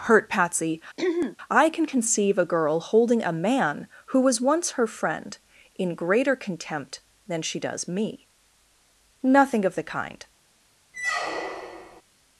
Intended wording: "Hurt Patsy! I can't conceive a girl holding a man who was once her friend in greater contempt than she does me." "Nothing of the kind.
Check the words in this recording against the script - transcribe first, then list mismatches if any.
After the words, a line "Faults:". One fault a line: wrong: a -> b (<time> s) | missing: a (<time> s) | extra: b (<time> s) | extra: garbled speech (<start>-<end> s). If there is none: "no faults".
"Hurt Patsy! I can conceive a girl holding a man who was once her friend in greater contempt than she does me." "Nothing of the kind.
Faults:
wrong: can't -> can (1.7 s)